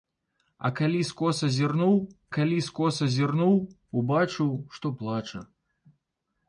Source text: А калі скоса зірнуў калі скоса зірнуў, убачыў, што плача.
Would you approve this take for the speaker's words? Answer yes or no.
yes